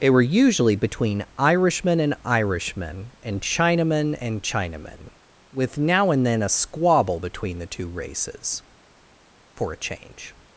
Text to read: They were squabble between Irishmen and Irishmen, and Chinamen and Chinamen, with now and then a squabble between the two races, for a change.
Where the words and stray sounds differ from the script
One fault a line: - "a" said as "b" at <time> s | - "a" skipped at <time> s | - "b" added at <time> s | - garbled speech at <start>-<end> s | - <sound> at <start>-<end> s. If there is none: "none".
- "squabble" said as "usually" at 0.2 s